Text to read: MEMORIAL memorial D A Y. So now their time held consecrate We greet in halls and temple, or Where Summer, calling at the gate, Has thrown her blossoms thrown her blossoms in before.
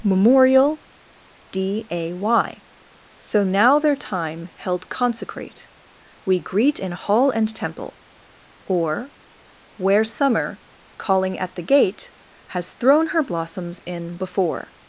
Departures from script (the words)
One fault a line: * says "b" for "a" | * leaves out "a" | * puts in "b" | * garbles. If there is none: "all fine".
* leaves out "memorial"
* says "hall" for "halls"
* leaves out "thrown her blossoms"